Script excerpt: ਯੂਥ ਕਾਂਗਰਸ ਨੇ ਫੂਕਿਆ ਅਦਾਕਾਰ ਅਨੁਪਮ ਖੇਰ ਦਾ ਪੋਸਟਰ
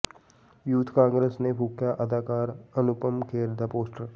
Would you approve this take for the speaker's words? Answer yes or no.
yes